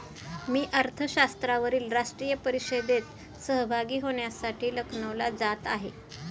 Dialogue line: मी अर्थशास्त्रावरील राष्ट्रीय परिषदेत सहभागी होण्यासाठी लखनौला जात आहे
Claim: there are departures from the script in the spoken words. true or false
false